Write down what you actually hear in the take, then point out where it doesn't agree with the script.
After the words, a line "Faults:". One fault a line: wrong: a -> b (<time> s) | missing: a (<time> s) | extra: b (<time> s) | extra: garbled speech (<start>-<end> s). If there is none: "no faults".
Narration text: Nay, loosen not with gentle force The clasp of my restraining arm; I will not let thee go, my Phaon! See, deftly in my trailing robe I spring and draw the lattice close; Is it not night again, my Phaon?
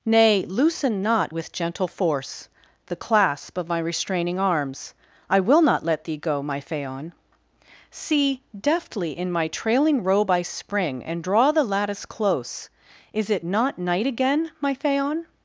Nay, loosen not with gentle force The clasp of my restraining arms; I will not let thee go, my Phaon! See, deftly in my trailing robe I spring and draw the lattice close; Is it not night again, my Phaon?
Faults:
wrong: arm -> arms (4.4 s)